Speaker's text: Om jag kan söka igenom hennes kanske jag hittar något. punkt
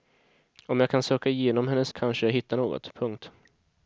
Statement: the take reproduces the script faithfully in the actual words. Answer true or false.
true